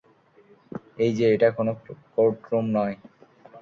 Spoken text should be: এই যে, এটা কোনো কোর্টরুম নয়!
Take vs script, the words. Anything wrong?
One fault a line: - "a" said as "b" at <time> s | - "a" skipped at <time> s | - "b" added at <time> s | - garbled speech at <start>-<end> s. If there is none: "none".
none